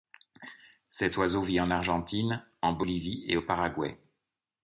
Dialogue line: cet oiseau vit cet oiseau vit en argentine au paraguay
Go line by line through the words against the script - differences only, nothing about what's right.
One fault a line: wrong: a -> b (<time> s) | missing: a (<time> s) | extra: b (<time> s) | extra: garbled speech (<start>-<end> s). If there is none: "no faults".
wrong: cet oiseau vit en argentine -> en argentine en bolivie et (1.6 s)